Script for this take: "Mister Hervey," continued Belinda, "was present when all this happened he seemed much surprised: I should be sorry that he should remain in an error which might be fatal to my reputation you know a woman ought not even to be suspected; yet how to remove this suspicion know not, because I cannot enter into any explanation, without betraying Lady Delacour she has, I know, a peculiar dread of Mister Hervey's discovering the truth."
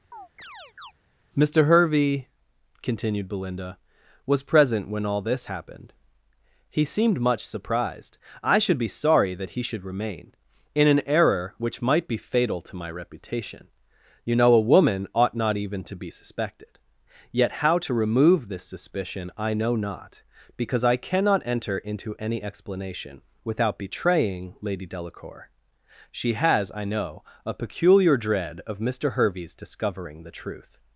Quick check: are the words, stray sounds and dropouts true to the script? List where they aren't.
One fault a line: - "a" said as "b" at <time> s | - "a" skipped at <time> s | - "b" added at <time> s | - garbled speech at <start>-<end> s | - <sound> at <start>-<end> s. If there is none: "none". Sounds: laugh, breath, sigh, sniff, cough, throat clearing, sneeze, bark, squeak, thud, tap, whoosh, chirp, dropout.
- chirp at 0.1-0.9 s
- "I" added at 19.4 s